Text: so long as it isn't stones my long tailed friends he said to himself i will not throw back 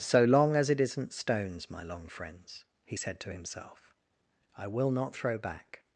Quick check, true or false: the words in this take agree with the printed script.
false